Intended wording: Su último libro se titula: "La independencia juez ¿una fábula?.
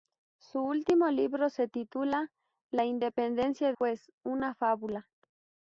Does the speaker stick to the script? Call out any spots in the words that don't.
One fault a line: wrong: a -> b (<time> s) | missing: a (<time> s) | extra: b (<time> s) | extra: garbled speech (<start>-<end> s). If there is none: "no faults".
no faults